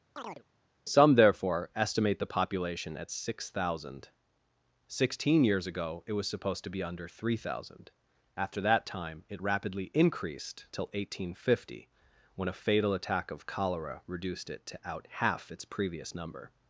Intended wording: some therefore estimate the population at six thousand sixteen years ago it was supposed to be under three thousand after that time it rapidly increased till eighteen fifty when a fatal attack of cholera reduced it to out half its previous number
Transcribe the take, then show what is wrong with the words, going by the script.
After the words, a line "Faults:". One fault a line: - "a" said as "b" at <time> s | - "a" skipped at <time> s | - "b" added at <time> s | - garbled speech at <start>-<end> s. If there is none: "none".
some therefore estimate the population at six thousand sixteen years ago it was supposed to be under three thousand after that time it rapidly increased till eighteen fifty when a fatal attack of cholera reduced it to out half its previous number
Faults:
none